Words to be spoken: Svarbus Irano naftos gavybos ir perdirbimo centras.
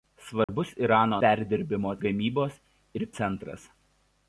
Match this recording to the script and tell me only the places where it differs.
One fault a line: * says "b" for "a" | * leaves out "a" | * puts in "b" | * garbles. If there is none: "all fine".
* says "perdirbimo" for "naftos"
* leaves out "perdirbimo"